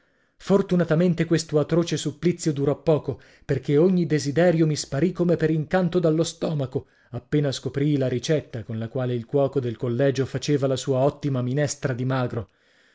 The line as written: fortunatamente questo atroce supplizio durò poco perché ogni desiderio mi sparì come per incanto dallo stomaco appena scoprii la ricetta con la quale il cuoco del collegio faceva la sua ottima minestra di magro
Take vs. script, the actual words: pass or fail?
pass